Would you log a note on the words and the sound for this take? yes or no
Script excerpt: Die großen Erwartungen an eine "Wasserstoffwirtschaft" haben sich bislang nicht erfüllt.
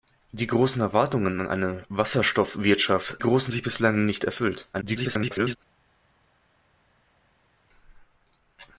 yes